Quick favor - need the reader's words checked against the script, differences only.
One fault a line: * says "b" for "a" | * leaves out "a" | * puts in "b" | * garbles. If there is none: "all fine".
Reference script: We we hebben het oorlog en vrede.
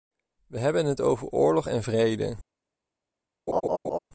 * leaves out "we"
* puts in "over"